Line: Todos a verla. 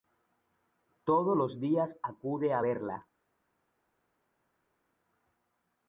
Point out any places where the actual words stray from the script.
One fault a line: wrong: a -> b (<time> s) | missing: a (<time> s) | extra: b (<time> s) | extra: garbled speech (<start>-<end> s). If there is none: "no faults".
extra: los días acude (1.4 s)